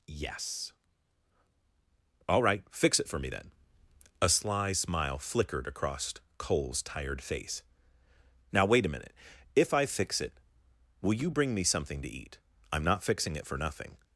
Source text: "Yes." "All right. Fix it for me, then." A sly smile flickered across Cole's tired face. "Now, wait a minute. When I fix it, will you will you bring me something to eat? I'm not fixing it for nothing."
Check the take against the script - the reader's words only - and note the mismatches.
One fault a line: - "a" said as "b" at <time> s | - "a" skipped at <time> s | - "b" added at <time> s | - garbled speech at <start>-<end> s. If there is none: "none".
- "When" said as "If" at 9.5 s
- "will you" skipped at 11.3 s